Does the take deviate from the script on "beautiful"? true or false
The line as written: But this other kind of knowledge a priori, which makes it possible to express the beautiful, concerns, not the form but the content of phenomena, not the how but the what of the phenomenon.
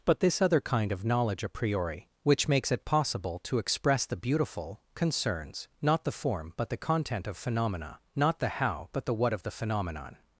false